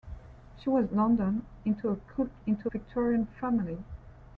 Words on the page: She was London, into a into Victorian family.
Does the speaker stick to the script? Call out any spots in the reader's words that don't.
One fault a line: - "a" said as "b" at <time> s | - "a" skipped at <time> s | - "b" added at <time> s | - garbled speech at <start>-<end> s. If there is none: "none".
none